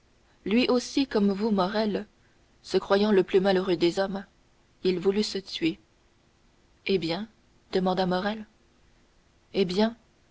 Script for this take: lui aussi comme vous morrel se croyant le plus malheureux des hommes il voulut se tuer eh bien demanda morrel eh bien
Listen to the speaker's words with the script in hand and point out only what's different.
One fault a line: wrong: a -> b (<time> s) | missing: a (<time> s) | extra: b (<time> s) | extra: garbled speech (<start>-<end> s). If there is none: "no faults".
no faults